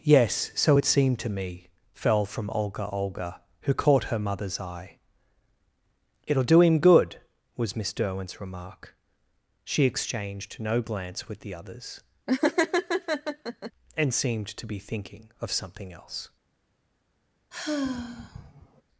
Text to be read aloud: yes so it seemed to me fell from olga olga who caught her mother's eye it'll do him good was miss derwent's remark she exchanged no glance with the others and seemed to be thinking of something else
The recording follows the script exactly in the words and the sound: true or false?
false